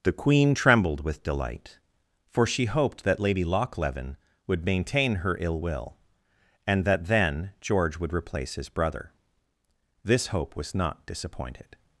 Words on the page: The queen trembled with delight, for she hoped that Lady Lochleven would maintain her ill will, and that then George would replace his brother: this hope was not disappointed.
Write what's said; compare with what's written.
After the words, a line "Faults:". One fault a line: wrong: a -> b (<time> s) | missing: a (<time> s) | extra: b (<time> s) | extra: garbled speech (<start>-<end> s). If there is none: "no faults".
The queen trembled with delight, for she hoped that Lady Lochleven would maintain her ill will, and that then George would replace his brother: this hope was not disappointed.
Faults:
no faults